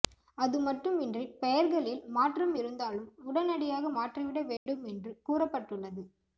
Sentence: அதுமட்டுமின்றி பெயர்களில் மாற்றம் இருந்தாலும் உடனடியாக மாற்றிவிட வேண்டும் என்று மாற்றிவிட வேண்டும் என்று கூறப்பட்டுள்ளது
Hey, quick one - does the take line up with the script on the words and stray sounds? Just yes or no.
no